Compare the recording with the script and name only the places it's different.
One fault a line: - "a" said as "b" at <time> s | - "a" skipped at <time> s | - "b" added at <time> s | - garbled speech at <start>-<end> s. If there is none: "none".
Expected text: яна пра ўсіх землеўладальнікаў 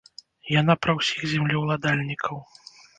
none